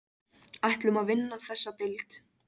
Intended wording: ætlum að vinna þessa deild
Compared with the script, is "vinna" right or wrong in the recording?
right